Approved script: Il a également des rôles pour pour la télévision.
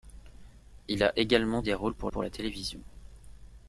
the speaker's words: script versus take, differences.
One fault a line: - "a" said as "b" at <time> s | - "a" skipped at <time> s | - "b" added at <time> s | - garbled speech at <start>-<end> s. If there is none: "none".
none